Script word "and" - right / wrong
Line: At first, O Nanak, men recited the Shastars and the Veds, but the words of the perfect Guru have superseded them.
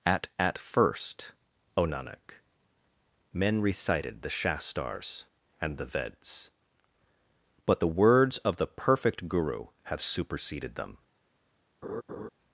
right